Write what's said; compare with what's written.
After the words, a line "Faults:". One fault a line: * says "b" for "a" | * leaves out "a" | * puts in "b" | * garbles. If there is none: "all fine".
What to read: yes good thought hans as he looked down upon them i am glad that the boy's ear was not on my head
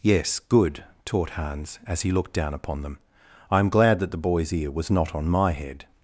yes good taught hans as he looked down upon them i am glad that the boy's ear was not on my head
Faults:
* says "taught" for "thought"